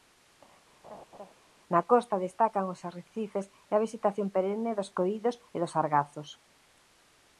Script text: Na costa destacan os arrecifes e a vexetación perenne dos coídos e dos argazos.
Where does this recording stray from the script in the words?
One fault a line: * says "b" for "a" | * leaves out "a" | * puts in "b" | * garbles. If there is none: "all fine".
all fine